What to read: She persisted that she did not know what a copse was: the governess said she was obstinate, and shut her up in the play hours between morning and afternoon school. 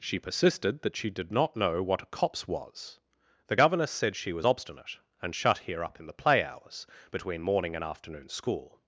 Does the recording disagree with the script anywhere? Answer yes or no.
yes